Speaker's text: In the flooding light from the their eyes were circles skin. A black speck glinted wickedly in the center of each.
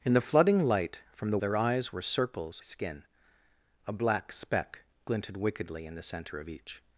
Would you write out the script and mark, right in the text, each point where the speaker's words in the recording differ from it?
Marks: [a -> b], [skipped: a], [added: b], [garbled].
In the flooding light from the their eyes were circles skin. A black speck glinted wickedly in the center of each.